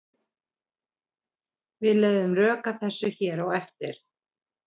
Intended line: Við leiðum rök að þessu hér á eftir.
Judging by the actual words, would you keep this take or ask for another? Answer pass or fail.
pass